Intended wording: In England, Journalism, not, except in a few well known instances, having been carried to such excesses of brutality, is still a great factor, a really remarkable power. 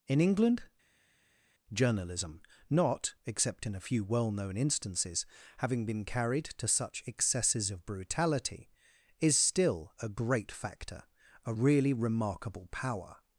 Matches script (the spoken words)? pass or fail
pass